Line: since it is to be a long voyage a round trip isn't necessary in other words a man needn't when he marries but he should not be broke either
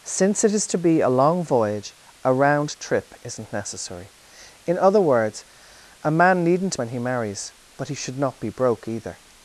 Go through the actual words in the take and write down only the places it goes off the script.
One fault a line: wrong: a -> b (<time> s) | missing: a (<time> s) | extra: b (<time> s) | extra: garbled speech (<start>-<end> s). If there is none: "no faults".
no faults